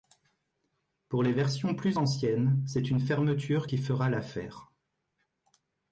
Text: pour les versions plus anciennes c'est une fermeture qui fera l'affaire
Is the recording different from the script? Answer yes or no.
no